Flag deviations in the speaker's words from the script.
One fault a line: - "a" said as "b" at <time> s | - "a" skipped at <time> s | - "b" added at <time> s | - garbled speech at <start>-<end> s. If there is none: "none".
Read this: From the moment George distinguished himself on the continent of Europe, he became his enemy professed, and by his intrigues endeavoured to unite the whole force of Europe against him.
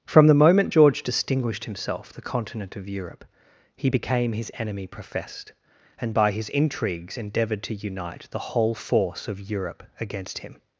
- "on" skipped at 2.1 s